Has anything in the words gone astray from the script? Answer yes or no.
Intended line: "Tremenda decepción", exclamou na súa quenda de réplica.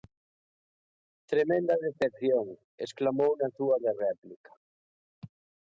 yes